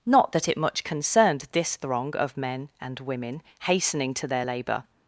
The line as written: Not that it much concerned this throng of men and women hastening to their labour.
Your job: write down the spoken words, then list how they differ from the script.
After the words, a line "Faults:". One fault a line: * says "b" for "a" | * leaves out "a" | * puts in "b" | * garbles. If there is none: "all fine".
Not that it much concerned this throng of men and women hastening to their labour.
Faults:
all fine